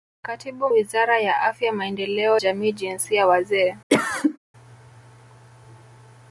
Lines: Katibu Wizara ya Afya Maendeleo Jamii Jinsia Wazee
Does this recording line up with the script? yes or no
yes